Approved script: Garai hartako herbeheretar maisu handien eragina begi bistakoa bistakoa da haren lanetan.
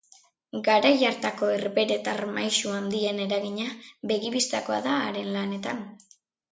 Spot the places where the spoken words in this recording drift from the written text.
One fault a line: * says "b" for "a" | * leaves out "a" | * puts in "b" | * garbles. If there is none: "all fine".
* leaves out "bistakoa"